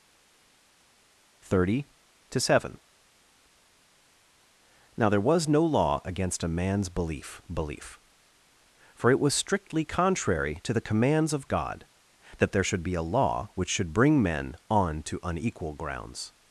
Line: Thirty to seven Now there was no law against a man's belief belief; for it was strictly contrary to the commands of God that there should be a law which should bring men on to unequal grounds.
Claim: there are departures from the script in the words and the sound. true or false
false